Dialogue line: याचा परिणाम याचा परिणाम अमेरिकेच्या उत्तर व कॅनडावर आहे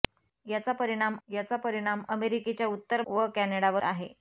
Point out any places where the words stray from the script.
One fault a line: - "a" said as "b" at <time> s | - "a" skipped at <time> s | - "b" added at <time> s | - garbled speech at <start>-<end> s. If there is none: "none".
none